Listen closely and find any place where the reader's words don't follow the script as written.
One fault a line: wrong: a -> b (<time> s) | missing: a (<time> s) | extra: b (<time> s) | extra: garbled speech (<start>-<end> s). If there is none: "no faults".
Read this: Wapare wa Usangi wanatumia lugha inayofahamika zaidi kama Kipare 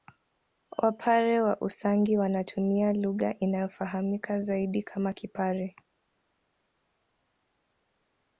no faults